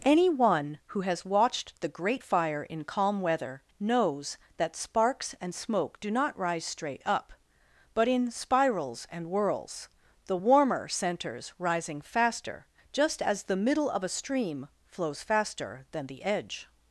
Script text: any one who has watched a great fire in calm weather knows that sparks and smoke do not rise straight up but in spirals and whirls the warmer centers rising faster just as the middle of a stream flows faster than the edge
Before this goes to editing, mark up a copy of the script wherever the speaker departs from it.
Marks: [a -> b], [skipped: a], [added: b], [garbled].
any one who has watched [a -> the] great fire in calm weather knows that sparks and smoke do not rise straight up but in spirals and whirls the warmer centers rising faster just as the middle of a stream flows faster than the edge